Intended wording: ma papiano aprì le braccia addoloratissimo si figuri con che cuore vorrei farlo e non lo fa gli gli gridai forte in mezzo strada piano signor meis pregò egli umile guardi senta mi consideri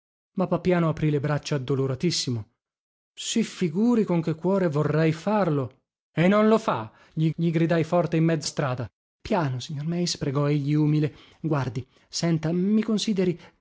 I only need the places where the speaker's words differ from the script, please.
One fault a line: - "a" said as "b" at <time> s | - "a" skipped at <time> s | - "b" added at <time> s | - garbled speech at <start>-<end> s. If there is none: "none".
none